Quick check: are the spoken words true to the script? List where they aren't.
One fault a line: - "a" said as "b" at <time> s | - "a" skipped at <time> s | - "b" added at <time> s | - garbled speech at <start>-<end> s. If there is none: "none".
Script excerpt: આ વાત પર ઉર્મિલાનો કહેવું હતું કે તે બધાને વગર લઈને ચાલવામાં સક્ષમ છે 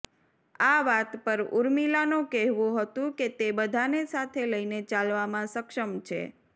- "વગર" said as "સાથે" at 4.1 s